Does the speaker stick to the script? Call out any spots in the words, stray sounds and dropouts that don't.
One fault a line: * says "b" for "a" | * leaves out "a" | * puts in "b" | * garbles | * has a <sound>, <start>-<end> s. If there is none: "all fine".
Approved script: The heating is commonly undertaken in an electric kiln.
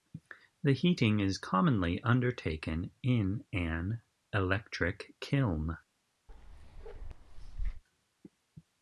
* has a bark, 6.3-7.8 s